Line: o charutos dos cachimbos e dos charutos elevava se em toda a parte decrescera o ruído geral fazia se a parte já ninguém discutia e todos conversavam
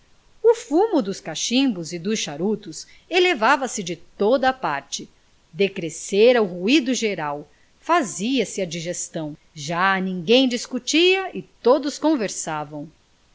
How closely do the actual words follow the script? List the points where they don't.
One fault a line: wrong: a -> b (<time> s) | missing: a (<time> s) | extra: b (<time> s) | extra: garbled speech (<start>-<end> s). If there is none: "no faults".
wrong: charutos -> fumo (0.6 s)
wrong: em -> de (3.8 s)
wrong: parte -> digestão (8.7 s)